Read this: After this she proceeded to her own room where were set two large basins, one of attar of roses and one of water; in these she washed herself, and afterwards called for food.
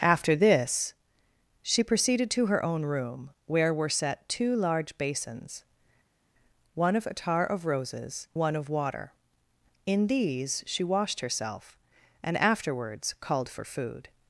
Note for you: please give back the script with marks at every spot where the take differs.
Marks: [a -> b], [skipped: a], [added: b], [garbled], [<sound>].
After this she proceeded to her own room where were set two large basins, one of attar of roses [skipped: and] one of water; in these she washed herself, and afterwards called for food.